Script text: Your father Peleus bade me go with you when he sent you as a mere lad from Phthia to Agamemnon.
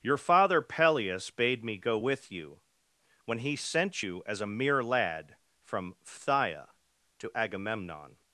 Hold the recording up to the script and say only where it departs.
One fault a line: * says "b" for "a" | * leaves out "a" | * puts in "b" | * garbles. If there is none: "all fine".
all fine